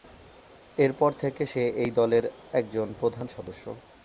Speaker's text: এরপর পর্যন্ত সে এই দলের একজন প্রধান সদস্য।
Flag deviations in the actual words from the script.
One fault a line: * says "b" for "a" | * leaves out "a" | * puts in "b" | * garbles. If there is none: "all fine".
* says "থেকে" for "পর্যন্ত"